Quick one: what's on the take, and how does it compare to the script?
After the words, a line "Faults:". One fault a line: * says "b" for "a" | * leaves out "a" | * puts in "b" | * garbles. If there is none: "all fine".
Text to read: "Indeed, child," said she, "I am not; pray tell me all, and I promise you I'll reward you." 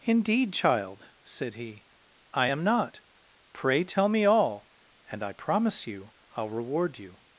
"Indeed, child," said he, "I am not; pray tell me all, and I promise you I'll reward you."
Faults:
* says "he" for "she"